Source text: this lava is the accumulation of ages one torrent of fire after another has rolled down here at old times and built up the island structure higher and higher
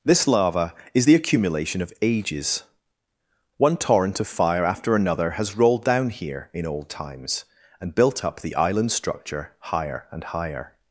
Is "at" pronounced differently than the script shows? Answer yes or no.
yes